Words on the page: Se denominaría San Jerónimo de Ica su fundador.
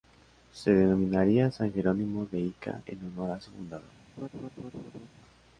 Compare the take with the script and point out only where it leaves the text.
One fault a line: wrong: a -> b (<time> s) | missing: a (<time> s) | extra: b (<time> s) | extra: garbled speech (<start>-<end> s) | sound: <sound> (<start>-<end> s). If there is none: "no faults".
extra: en honor a (2.9 s)
sound: laugh (4.2-5.1 s)